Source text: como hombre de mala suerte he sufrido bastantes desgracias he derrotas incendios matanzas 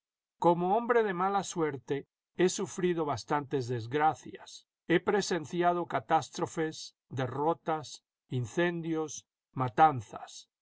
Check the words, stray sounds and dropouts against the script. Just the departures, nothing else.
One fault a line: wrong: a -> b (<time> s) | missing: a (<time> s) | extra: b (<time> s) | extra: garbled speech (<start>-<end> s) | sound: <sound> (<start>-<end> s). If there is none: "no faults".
extra: presenciado catástrofes (5.0 s)